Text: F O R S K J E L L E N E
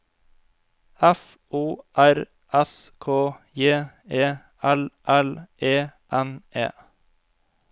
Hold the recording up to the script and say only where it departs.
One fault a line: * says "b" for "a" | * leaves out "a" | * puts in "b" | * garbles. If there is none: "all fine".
all fine